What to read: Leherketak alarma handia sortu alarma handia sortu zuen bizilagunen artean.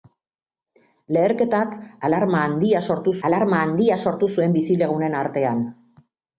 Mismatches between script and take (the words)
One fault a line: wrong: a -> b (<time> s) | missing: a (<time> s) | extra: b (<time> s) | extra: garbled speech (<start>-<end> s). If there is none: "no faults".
no faults